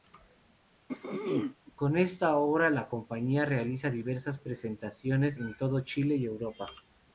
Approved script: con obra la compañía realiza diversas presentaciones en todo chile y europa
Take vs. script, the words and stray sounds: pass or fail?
fail